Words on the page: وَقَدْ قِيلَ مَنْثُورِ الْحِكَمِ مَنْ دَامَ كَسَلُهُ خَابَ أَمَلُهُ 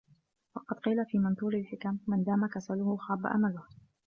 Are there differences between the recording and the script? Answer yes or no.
yes